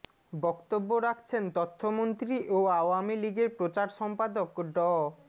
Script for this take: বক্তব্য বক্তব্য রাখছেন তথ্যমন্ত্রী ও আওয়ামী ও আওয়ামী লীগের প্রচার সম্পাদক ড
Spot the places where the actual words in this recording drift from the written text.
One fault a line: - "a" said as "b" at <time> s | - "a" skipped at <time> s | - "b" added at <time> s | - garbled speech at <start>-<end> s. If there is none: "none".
- "বক্তব্য" skipped at 0.9 s
- "ও আওয়ামী" skipped at 3.2 s